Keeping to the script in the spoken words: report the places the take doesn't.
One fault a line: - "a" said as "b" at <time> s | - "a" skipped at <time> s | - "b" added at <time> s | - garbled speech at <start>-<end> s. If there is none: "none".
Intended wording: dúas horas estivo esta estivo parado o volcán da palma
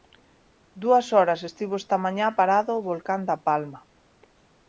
- "estivo" said as "mañá" at 2.0 s